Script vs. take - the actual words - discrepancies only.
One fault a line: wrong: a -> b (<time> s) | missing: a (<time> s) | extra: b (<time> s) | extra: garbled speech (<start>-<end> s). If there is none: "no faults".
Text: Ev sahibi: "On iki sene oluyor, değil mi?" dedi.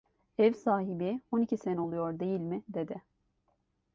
no faults